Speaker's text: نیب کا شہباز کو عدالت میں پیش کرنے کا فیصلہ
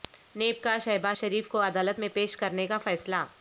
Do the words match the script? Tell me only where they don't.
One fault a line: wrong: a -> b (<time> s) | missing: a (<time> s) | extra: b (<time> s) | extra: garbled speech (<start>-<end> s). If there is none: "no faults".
extra: شریف (1.1 s)